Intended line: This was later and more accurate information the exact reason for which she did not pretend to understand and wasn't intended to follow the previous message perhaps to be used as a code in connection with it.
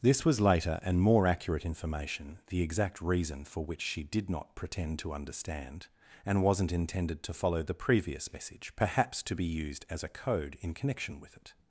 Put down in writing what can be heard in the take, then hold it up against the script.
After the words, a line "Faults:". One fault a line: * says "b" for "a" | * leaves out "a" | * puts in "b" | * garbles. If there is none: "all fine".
This was later and more accurate information the exact reason for which she did not pretend to understand and wasn't intended to follow the previous message perhaps to be used as a code in connection with it.
Faults:
all fine